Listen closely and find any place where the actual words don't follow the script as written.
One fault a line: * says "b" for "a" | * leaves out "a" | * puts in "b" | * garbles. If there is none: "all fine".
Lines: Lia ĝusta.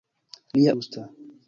all fine